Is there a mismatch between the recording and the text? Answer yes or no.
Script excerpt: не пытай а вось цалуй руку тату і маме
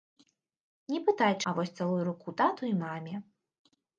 no